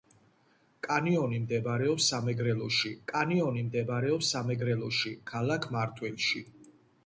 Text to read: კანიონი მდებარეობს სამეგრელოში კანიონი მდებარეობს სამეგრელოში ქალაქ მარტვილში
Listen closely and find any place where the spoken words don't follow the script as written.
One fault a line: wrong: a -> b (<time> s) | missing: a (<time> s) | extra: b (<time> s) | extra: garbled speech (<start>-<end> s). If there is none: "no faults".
no faults